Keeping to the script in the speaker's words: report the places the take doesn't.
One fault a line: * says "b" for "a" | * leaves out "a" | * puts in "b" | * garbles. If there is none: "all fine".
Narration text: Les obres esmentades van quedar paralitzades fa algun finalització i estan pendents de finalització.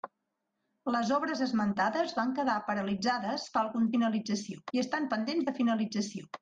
all fine